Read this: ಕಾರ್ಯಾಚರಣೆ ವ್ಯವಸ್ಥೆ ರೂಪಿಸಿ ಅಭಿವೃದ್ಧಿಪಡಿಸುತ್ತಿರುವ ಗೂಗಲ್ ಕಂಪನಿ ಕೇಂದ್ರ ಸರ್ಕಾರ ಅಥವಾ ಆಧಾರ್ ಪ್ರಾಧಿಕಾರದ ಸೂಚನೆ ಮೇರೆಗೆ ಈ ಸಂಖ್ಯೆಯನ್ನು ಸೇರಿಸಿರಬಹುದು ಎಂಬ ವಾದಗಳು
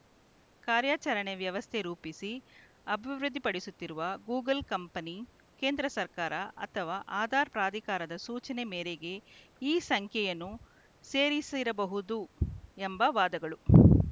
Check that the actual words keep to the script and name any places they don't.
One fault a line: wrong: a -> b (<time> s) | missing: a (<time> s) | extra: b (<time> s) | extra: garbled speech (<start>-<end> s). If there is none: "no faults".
no faults